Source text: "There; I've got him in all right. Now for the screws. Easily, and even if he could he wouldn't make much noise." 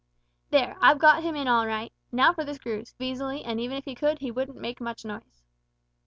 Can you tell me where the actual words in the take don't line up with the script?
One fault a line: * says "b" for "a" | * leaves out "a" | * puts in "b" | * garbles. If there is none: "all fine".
all fine